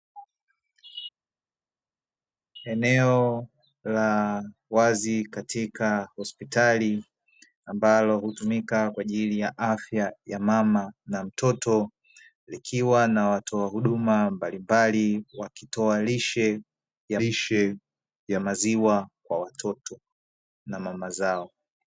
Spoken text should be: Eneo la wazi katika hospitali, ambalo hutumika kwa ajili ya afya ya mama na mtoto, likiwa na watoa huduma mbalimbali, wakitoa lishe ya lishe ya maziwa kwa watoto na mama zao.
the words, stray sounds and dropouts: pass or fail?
pass